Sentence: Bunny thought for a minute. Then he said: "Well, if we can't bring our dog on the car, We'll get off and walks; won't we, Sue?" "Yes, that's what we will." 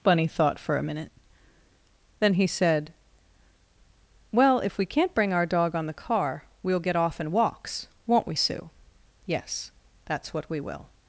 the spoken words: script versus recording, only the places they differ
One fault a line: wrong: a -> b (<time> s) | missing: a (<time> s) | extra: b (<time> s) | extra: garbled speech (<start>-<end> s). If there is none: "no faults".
no faults